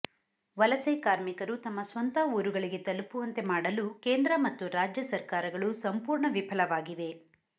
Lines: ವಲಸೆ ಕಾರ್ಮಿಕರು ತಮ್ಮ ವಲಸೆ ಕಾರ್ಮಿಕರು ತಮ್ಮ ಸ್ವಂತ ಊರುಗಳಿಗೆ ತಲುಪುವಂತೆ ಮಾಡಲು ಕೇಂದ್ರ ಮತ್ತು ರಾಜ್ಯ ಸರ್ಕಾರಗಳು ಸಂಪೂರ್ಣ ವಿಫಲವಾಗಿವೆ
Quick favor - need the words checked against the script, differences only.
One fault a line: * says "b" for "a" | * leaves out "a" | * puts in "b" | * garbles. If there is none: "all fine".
* leaves out "ವಲಸೆ ಕಾರ್ಮಿಕರು ತಮ್ಮ"